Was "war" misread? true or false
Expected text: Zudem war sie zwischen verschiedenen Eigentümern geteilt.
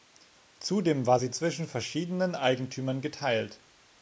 false